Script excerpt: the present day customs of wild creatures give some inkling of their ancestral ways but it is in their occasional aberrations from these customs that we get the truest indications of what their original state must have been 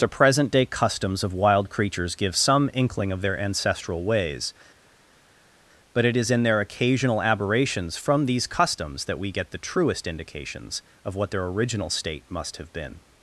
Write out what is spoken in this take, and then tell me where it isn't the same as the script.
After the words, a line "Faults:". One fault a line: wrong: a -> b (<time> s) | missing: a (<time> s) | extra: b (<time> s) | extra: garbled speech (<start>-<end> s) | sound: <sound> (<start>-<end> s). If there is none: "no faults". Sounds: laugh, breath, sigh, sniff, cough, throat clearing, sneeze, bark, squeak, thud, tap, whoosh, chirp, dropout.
the present day customs of wild creatures give some inkling of their ancestral ways but it is in their occasional aberrations from these customs that we get the truest indications of what their original state must have been
Faults:
no faults